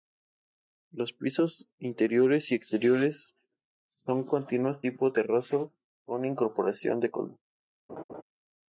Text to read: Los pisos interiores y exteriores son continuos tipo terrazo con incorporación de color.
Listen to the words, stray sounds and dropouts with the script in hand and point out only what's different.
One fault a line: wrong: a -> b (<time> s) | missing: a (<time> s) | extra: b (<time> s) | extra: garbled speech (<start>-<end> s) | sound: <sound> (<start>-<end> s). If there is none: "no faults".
sound: laugh (7.9-8.2 s)